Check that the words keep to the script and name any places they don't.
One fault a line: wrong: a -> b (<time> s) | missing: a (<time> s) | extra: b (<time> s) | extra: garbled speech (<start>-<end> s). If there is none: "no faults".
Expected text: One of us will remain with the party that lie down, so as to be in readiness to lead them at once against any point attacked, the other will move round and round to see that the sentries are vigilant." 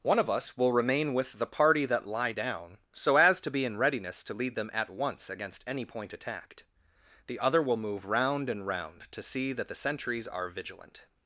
no faults